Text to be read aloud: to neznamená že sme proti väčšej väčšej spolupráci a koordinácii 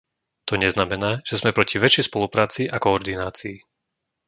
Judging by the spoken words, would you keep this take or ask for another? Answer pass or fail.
fail